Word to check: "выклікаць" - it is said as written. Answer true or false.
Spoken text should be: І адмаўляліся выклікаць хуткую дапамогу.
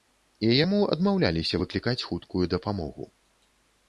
true